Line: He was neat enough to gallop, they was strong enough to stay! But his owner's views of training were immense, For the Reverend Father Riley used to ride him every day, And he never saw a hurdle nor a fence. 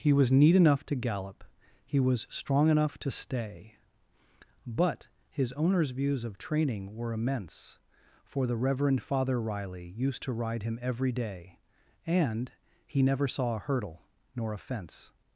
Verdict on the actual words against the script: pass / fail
fail